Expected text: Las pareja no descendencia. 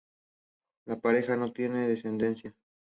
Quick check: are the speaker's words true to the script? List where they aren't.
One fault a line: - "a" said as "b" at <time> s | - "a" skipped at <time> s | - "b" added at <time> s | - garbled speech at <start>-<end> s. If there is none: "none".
- "Las" said as "La" at 0.8 s
- "tiene" added at 1.5 s